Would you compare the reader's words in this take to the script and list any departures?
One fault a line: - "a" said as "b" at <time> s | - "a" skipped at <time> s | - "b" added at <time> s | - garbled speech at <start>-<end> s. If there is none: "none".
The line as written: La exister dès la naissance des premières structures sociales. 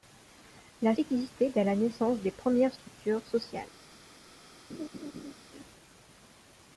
none